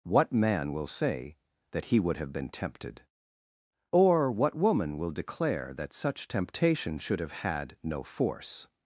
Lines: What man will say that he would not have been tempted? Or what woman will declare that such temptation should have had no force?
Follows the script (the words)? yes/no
no